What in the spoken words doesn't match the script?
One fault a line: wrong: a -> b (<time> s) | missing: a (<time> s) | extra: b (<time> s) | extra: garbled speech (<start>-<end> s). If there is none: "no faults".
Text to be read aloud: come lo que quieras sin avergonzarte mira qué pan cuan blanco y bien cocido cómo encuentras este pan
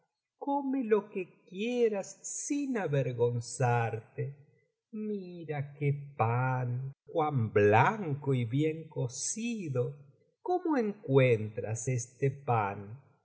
no faults